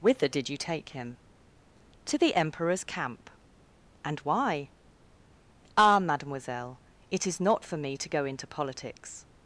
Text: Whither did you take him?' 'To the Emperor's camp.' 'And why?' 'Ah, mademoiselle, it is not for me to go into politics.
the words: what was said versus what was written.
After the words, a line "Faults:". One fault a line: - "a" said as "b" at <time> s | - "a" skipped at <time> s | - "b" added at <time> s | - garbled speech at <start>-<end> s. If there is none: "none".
Whither did you take him?' 'To the Emperor's camp.' 'And why?' 'Ah, mademoiselle, it is not for me to go into politics.
Faults:
none